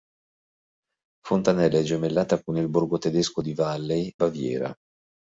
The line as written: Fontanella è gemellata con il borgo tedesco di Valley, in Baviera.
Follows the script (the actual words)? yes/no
no